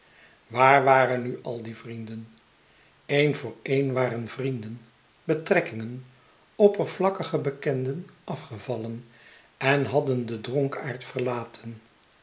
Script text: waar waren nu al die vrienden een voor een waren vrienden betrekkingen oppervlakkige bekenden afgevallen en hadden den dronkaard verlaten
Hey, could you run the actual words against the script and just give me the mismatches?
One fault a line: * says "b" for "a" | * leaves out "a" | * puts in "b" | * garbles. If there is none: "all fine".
all fine